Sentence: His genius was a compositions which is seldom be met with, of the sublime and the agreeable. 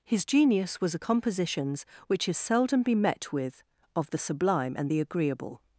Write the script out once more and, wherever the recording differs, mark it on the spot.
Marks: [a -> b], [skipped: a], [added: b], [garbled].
His genius was a compositions which is seldom be met with, of the sublime and the agreeable.